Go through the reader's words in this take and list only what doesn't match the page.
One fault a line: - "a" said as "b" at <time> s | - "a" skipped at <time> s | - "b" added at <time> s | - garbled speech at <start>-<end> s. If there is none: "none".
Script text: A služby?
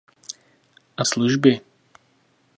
none